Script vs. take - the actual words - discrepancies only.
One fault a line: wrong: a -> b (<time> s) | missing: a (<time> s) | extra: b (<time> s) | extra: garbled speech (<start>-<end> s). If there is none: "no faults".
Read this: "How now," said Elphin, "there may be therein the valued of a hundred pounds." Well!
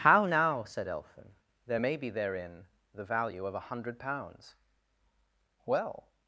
wrong: valued -> value (3.0 s)